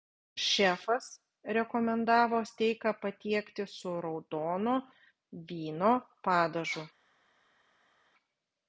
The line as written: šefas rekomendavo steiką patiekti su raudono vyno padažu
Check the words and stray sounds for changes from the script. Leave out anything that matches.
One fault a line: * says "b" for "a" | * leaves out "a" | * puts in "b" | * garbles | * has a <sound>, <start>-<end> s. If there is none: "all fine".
all fine